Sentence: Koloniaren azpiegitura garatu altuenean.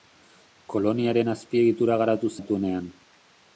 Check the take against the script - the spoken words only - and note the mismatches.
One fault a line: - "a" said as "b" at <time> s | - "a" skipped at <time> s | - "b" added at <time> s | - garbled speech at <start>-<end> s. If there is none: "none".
none